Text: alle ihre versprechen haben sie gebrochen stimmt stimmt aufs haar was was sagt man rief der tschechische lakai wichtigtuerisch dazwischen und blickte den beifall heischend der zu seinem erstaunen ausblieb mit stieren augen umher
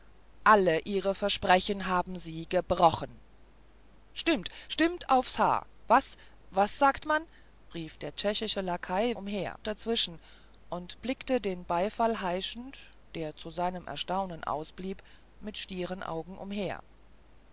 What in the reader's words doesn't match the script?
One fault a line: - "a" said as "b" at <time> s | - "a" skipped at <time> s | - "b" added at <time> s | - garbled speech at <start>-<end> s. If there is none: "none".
- "wichtigtuerisch" said as "umher" at 9.1 s